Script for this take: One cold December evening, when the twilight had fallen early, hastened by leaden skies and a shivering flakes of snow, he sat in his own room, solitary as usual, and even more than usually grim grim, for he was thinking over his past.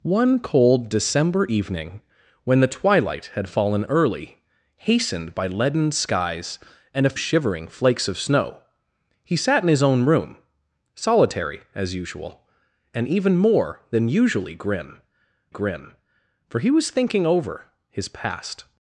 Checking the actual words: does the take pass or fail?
pass